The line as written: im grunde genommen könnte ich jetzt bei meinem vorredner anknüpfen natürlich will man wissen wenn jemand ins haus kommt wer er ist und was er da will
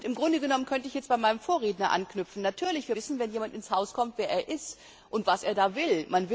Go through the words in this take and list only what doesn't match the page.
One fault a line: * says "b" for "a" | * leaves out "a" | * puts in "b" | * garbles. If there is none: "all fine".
* leaves out "man"